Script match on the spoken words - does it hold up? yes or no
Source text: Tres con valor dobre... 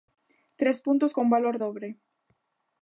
no